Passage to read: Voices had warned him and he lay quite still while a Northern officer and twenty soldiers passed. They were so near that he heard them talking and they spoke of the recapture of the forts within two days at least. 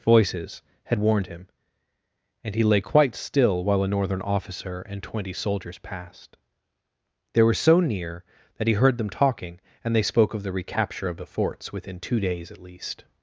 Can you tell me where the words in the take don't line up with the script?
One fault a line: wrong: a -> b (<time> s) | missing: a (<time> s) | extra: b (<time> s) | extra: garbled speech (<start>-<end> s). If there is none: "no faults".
no faults